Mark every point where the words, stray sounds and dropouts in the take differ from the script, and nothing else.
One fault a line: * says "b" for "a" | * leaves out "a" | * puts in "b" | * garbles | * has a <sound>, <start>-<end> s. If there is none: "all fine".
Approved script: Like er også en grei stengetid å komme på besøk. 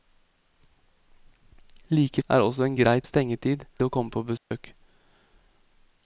* has a dropout, 4.4-4.5 s